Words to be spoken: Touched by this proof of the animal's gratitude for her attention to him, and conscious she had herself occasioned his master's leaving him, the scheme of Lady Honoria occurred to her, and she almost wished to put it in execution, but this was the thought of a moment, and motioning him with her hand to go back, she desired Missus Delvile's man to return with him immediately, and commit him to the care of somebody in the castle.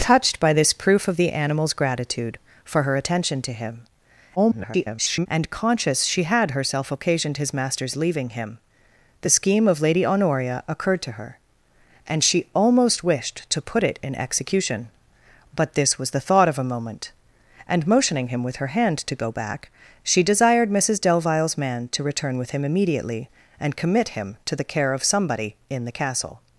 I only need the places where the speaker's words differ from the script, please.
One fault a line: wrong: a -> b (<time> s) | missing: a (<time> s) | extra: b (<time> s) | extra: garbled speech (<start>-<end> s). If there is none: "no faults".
extra: garbled speech (4.4-5.3 s)